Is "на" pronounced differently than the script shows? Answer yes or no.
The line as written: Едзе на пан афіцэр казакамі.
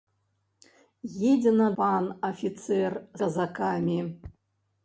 no